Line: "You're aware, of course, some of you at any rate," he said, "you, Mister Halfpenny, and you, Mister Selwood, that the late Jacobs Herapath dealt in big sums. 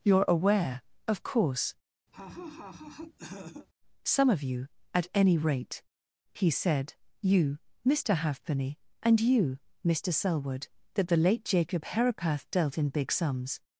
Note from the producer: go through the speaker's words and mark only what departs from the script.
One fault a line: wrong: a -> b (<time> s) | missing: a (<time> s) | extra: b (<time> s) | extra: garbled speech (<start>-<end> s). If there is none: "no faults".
wrong: Jacobs -> Jacob (11.4 s)